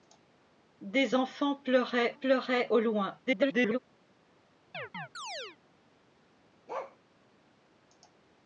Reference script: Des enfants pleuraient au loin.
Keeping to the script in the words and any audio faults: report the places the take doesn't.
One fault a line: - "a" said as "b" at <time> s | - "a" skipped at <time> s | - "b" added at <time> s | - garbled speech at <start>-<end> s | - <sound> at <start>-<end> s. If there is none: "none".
- "pleuraient" added at 2.1 s
- garbled speech at 3.3-3.8 s
- chirp at 4.7-5.6 s
- bark at 6.7-7.0 s